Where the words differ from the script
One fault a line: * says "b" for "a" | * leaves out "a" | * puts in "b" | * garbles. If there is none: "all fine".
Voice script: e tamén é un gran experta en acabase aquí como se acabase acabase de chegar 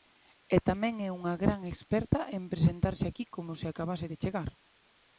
* says "unha" for "un"
* says "presentarse" for "acabase"
* leaves out "acabase"